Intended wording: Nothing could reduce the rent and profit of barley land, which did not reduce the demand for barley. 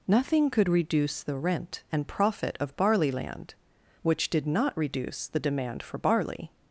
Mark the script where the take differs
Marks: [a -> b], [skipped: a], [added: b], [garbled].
Nothing could reduce the rent and profit of barley land, which did not reduce the demand for barley.